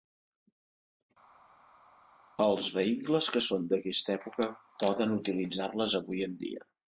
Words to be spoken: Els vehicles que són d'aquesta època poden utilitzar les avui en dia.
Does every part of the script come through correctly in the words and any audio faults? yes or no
yes